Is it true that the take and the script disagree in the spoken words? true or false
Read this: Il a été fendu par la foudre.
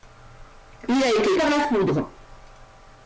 true